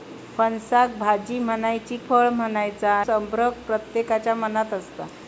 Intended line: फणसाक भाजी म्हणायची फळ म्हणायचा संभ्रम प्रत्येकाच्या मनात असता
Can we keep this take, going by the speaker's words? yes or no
yes